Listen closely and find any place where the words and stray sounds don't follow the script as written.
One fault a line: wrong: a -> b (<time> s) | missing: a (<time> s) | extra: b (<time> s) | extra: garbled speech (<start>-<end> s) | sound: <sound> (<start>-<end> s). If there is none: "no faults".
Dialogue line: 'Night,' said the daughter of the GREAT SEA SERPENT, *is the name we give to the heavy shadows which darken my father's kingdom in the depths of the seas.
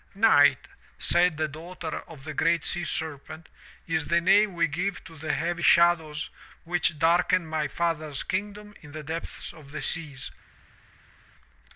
no faults